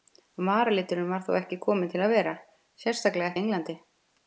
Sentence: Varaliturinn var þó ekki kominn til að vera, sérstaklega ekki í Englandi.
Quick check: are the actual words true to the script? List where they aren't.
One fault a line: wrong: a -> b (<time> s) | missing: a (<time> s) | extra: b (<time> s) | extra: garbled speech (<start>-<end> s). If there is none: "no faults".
missing: ekki (3.3 s)